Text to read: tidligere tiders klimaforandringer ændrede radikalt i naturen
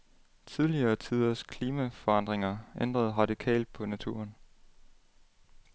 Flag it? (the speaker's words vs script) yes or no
yes